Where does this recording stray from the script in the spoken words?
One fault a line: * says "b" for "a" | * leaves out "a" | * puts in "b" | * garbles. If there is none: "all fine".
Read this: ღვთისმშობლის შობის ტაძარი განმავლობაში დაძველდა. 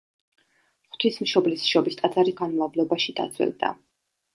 all fine